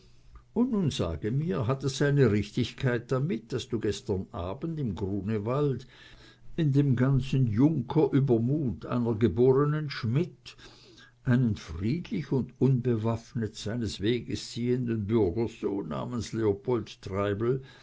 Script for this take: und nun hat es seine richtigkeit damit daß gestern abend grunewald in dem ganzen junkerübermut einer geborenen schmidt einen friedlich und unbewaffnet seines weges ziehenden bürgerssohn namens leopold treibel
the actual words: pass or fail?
fail